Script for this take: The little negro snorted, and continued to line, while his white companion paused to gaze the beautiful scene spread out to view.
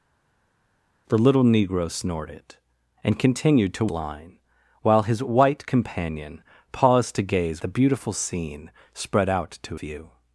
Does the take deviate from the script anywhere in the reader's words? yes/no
no